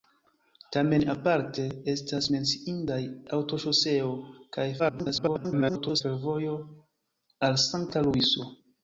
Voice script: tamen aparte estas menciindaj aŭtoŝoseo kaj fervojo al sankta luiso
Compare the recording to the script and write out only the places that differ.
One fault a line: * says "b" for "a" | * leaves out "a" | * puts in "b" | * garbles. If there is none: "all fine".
* garbles